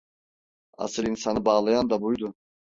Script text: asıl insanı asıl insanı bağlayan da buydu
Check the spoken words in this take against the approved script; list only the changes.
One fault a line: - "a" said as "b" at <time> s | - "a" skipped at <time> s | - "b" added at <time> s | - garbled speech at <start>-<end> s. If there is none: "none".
- "asıl insanı" skipped at 1.4 s